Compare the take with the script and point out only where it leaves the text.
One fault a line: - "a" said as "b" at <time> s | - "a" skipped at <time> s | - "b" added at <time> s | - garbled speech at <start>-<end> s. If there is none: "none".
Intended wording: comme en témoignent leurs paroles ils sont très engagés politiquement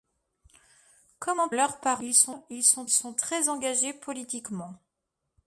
- "témoignent" skipped at 1.5 s
- "sont" added at 2.9 s